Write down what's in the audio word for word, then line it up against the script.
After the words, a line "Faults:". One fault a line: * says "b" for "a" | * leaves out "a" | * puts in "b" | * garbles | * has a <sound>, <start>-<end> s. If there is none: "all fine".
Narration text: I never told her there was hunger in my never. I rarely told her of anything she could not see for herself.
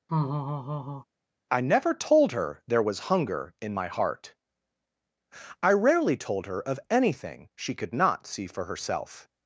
I never told her there was hunger in my heart. I rarely told her of anything she could not see for herself.
Faults:
* has a laugh, 0.1-1.0 s
* says "heart" for "never"